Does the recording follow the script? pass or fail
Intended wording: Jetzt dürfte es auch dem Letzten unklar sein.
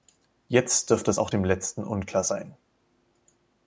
pass